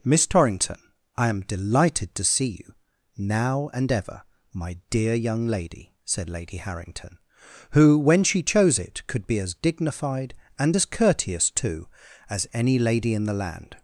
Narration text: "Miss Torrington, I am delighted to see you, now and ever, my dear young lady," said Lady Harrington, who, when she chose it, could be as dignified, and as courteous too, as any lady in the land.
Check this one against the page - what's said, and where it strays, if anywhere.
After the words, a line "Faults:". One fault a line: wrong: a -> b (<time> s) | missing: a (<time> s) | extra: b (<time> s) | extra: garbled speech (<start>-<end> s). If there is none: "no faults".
"Miss Torrington, I am delighted to see you, now and ever, my dear young lady," said Lady Harrington, who, when she chose it, could be as dignified, and as courteous too, as any lady in the land.
Faults:
no faults